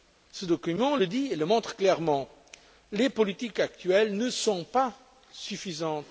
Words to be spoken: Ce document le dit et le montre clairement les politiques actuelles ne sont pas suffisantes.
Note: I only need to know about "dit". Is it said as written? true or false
true